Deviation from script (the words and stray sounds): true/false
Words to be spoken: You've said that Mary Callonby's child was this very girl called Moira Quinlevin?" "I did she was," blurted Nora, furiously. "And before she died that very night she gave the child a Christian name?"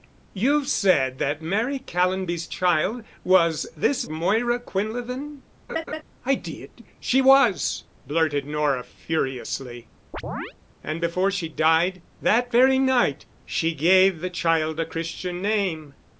true